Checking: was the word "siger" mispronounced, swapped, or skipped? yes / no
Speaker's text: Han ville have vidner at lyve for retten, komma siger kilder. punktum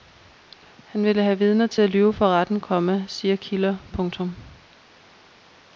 no